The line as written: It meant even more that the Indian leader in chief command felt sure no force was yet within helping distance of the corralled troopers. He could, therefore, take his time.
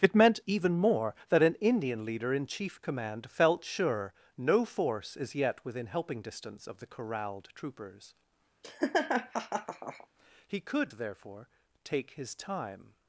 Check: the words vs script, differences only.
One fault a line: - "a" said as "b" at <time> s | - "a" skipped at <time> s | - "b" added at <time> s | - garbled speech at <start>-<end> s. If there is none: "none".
- "the" said as "an" at 1.4 s
- "was" said as "is" at 5.2 s